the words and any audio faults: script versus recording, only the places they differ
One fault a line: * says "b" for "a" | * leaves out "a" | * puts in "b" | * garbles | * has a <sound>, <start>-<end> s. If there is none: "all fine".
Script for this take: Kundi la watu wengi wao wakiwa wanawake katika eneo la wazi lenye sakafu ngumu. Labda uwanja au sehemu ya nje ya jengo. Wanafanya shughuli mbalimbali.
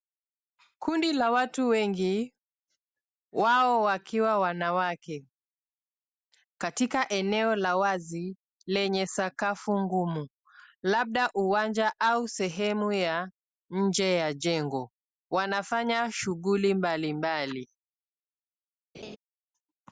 * has a laugh, 18.9-19.2 s